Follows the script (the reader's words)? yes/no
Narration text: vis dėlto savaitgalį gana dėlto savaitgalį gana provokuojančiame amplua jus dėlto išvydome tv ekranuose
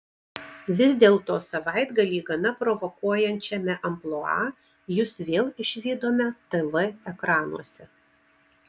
no